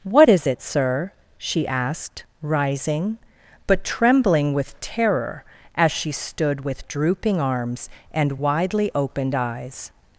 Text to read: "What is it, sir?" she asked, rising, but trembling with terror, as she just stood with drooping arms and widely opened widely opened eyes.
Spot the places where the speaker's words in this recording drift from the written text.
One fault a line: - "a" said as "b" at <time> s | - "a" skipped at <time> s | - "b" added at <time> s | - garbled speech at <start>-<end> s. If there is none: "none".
- "just" skipped at 6.1 s
- "widely opened" skipped at 9.3 s